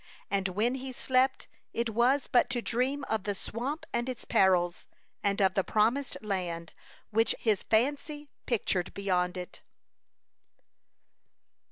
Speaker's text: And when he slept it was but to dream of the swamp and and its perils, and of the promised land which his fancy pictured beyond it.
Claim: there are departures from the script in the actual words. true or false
true